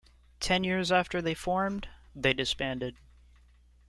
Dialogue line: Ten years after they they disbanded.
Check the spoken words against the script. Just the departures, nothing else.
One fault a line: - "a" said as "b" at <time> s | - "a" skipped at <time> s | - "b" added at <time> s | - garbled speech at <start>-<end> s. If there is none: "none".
- "formed" added at 1.3 s